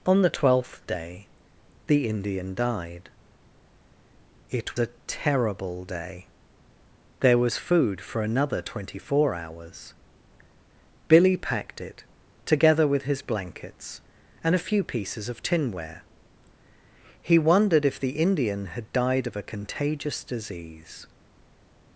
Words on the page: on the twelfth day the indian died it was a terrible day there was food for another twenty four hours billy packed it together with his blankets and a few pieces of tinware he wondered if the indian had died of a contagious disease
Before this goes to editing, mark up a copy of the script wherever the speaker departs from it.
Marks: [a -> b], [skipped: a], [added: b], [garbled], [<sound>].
on the twelfth day the indian died it [skipped: was] a terrible day there was food for another twenty four hours billy packed it together with his blankets and a few pieces of tinware he wondered if the indian had died of a contagious disease